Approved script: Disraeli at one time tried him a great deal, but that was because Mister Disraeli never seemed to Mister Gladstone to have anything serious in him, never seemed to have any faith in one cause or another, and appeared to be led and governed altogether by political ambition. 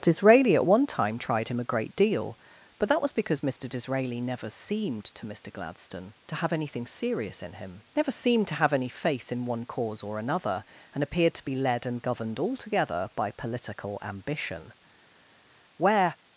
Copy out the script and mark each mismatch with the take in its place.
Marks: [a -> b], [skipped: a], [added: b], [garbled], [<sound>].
Disraeli at one time tried him a great deal, but that was because Mister Disraeli never seemed to Mister Gladstone to have anything serious in him, never seemed to have any faith in one cause or another, and appeared to be led and governed altogether by political ambition. [added: Where]